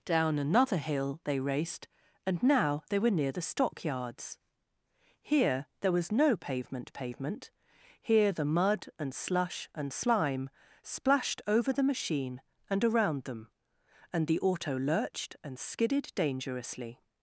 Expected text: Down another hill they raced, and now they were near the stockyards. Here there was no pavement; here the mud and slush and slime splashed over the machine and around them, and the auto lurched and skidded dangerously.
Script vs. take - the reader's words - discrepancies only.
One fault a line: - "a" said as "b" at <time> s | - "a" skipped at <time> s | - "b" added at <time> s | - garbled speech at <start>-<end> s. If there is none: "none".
- "pavement" added at 6.9 s